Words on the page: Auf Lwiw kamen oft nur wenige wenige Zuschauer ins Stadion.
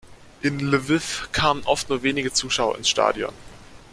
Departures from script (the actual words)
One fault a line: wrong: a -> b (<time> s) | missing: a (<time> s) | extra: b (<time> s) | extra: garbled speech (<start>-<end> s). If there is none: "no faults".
wrong: Auf -> In (0.4 s)
missing: wenige (2.3 s)